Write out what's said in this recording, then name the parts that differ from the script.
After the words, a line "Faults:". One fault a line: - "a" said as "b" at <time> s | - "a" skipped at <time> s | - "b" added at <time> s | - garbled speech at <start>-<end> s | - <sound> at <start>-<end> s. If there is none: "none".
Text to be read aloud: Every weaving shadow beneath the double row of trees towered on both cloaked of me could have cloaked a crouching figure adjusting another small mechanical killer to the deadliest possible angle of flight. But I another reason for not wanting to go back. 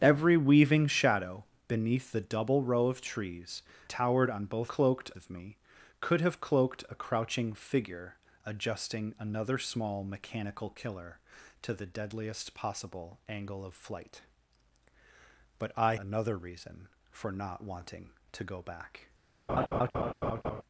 Every weaving shadow beneath the double row of trees towered on both cloaked of me could have cloaked a crouching figure adjusting another small mechanical killer to the deadliest possible angle of flight. But I another reason for not wanting to go back.
Faults:
- laugh at 19.5-20.6 s